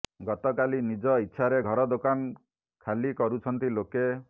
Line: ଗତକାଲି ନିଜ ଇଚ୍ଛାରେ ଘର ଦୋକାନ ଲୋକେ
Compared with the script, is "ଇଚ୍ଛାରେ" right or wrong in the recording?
right